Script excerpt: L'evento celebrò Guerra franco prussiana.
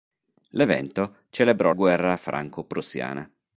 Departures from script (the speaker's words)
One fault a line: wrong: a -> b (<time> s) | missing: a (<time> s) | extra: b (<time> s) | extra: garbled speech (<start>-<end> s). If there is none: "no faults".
no faults